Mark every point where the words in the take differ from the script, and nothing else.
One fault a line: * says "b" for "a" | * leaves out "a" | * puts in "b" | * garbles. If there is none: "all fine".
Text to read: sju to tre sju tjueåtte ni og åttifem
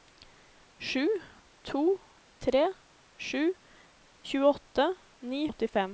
all fine